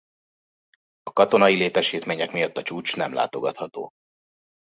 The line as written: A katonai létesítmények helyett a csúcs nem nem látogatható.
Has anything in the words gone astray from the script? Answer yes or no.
yes